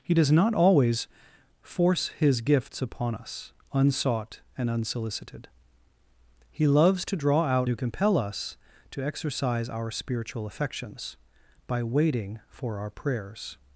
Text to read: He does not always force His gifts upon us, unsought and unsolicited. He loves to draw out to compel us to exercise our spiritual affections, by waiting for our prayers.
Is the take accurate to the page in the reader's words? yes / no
yes